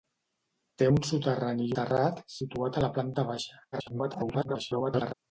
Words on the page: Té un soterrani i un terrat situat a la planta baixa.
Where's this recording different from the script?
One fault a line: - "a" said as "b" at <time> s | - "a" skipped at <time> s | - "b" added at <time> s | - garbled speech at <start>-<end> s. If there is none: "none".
- "un" skipped at 1.7 s
- garbled speech at 3.7-5.1 s